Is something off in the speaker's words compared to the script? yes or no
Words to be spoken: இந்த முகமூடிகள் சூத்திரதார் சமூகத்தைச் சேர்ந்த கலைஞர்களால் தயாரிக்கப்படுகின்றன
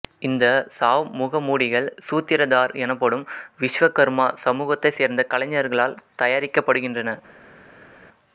yes